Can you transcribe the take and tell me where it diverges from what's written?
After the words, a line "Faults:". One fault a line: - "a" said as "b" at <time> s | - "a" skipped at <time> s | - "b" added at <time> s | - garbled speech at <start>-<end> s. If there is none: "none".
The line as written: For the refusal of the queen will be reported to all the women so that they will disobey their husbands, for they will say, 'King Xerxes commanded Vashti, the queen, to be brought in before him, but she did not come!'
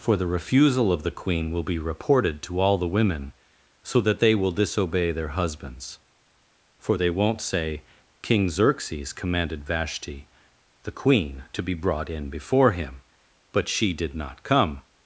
For the refusal of the queen will be reported to all the women so that they will disobey their husbands, for they won't say, 'King Xerxes commanded Vashti, the queen, to be brought in before him, but she did not come!'
Faults:
- "will" said as "won't" at 7.1 s